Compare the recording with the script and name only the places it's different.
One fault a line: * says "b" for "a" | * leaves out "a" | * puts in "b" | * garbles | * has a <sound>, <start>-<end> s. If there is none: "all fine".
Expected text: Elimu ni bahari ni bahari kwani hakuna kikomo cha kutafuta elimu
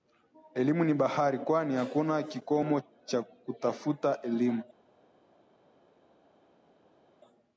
* leaves out "ni bahari"